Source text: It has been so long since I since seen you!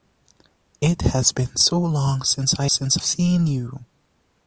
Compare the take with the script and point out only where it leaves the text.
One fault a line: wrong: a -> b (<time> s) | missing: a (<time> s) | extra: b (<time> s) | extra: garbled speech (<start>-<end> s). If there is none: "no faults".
no faults